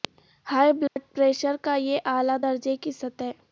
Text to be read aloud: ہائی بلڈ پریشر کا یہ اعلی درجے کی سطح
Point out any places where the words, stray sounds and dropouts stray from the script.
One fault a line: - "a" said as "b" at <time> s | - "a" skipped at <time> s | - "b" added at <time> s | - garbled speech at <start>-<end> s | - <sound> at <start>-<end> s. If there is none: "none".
- dropout at 0.9-1.0 s